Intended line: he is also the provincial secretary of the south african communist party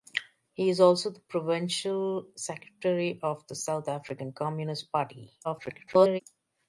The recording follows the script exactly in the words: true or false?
false